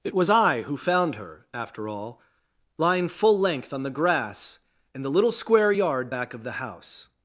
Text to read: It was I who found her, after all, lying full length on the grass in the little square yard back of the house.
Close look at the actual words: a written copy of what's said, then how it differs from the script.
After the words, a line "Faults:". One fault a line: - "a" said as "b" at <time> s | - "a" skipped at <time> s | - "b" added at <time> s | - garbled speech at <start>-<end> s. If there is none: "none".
It was I who found her, after all, lying full length on the grass in the little square yard back of the house.
Faults:
none